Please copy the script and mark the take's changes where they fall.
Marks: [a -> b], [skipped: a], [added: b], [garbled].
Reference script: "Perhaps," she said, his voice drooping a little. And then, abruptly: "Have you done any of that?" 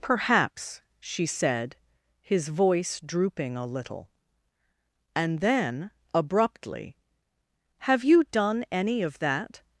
"Perhaps," she said, his voice drooping a little. And then, abruptly: "Have you done any of that?"